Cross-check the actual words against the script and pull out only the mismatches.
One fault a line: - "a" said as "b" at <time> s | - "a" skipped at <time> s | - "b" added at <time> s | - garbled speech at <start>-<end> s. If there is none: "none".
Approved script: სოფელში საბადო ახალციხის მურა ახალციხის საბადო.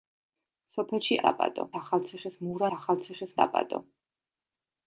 none